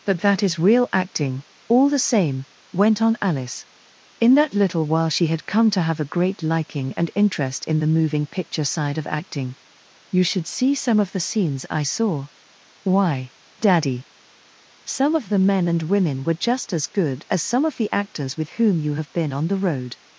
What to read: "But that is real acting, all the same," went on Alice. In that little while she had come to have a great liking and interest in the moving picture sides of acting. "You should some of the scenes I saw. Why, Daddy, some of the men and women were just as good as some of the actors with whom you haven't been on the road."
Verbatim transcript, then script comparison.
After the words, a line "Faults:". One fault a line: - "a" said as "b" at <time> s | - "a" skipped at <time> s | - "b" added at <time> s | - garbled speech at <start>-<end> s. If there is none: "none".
"But that is real acting, all the same," went on Alice. In that little while she had come to have a great liking and interest in the moving picture side of acting. "You should see some of the scenes I saw. Why, Daddy, some of the men and women were just as good as some of the actors with whom you have been on the road."
Faults:
- "sides" said as "side" at 8.6 s
- "see" added at 10.5 s
- "haven't" said as "have" at 18.9 s